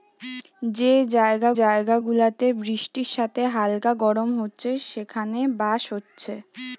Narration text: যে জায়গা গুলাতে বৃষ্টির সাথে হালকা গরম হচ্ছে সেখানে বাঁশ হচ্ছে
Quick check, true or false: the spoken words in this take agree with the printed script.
false